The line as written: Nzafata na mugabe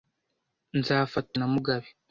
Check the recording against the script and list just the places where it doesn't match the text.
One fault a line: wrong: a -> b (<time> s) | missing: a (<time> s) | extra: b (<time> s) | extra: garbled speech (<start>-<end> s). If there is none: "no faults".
no faults